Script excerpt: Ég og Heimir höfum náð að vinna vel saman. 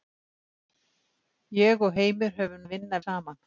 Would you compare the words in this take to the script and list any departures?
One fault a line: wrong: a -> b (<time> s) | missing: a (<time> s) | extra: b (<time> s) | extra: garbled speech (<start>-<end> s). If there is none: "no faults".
missing: náð (2.6 s)
missing: vel (3.0 s)